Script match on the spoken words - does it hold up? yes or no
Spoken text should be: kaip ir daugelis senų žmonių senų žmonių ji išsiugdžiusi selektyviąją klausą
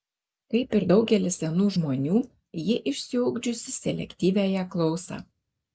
no